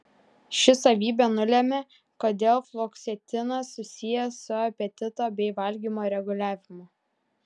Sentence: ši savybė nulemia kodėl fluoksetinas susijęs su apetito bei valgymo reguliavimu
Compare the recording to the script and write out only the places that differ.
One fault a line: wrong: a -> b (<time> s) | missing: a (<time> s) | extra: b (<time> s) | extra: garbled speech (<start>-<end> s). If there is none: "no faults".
no faults